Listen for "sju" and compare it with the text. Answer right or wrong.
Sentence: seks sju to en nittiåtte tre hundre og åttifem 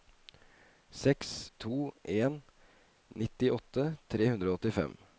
wrong